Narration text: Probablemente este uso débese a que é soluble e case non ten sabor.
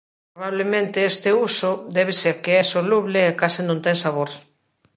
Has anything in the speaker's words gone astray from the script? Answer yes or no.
no